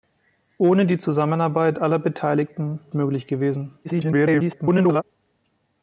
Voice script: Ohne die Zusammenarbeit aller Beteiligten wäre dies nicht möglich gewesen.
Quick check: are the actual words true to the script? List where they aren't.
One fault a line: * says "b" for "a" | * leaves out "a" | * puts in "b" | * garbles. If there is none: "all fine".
* leaves out "wäre dies nicht"
* garbles